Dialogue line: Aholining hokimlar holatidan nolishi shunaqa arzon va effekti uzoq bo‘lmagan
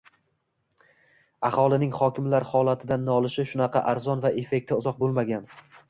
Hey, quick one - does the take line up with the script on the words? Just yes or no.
yes